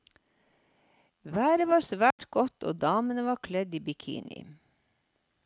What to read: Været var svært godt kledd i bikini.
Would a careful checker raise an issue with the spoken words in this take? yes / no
yes